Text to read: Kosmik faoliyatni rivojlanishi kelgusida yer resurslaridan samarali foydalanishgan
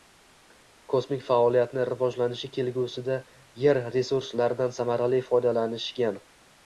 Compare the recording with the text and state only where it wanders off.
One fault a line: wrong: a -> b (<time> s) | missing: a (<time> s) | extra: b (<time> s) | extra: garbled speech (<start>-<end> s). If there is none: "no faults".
no faults